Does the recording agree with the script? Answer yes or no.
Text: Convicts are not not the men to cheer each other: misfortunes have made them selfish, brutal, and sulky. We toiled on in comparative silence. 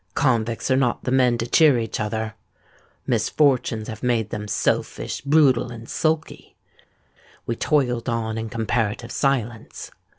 no